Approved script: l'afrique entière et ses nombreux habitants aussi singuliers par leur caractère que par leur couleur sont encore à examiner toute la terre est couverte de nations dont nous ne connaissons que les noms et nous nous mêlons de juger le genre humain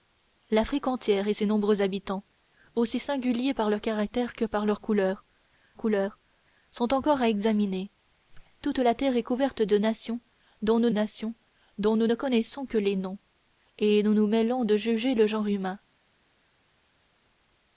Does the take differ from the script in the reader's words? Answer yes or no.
yes